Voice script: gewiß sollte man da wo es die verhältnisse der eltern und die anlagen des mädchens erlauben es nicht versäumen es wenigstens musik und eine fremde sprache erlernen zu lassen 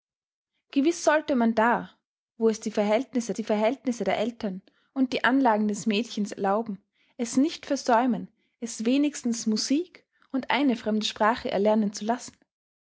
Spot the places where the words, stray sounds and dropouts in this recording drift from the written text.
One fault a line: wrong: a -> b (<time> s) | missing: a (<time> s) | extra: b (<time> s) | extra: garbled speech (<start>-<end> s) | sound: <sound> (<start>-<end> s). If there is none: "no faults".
extra: die verhältnisse (3.3 s)